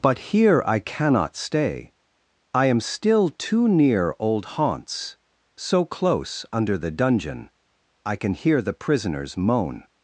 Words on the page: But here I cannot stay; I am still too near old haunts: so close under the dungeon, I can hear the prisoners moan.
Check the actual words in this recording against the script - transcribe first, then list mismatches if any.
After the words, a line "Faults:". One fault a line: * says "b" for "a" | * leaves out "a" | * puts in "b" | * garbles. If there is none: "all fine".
But here I cannot stay; I am still too near old haunts: so close under the dungeon, I can hear the prisoners moan.
Faults:
all fine